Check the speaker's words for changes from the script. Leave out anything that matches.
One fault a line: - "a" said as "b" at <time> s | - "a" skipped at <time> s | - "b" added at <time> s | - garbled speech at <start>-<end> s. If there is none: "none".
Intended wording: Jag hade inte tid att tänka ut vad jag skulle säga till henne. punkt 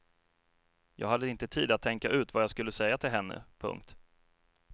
none